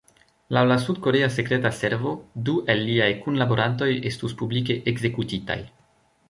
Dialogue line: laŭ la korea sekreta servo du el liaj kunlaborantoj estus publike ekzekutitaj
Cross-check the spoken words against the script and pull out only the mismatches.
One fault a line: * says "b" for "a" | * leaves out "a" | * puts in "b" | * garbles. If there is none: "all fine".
* puts in "sud"